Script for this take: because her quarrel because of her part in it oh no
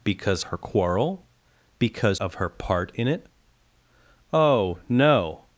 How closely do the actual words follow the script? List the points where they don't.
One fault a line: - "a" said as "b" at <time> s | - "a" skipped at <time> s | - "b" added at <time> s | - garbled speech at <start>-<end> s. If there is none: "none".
none